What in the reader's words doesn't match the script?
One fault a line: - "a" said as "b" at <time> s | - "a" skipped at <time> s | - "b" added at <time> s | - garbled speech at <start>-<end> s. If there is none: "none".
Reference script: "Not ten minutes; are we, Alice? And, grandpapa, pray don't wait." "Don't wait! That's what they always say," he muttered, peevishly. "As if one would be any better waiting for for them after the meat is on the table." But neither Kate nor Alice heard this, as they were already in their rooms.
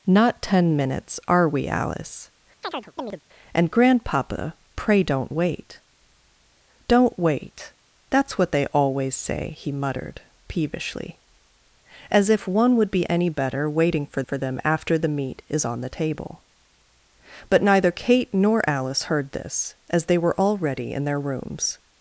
none